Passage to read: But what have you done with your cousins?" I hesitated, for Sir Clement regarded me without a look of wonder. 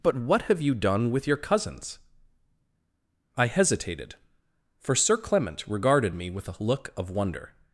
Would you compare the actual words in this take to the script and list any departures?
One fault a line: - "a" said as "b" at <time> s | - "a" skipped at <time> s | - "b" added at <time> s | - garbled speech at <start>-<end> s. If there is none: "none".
- "without" said as "with" at 6.3 s